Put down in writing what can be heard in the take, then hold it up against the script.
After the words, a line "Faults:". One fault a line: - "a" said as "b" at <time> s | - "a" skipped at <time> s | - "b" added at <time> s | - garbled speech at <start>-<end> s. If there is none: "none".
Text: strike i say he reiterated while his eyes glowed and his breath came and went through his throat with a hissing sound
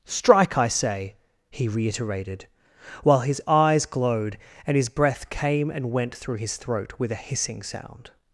strike i say he reiterated while his eyes glowed and his breath came and went through his throat with a hissing sound
Faults:
none